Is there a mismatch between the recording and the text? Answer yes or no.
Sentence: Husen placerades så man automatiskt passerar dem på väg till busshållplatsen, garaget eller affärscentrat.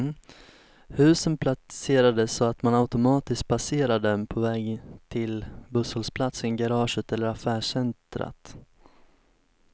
yes